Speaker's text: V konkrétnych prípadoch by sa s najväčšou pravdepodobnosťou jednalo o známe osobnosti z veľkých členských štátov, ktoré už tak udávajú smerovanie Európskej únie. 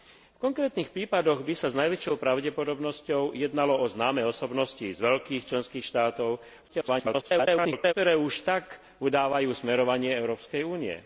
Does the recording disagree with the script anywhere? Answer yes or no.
yes